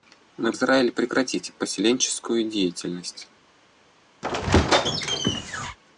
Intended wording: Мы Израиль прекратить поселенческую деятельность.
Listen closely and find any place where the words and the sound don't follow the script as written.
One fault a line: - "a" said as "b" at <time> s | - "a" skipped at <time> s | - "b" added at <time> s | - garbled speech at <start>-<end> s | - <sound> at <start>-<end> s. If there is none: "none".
- squeak at 4.2-5.8 s